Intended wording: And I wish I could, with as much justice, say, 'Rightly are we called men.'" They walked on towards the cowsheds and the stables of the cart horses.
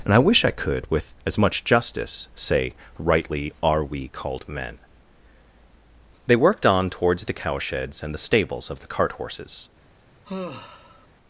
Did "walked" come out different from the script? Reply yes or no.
yes